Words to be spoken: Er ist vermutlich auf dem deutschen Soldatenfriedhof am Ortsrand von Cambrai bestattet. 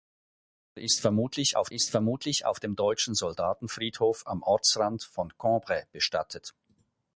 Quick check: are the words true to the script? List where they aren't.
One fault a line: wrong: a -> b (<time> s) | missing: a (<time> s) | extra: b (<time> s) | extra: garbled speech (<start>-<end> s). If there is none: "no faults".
extra: ist vermutlich auf (1.7 s)